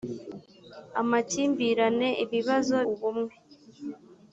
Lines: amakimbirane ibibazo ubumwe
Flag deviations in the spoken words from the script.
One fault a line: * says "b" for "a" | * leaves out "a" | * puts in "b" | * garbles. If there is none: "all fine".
all fine